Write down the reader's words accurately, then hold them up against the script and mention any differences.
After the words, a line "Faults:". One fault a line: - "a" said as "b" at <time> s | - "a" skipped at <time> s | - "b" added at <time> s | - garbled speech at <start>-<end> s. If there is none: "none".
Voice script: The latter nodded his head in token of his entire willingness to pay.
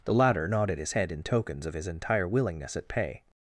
The latter nodded his head in tokens of his entire willingness at pay.
Faults:
- "token" said as "tokens" at 1.2 s
- "to" said as "at" at 2.8 s